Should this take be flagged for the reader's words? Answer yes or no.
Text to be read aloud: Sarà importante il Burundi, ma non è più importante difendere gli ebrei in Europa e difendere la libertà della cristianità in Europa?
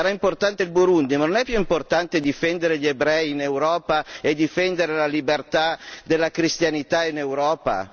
no